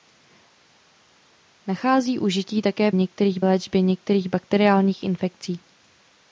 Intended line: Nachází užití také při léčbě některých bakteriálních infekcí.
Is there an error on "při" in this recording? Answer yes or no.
yes